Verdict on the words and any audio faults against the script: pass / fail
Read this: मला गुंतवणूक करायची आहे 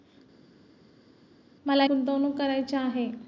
pass